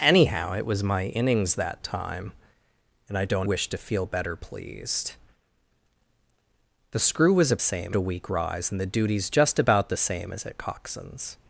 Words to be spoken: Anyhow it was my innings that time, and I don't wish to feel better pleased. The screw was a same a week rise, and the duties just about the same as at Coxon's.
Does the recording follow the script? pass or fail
pass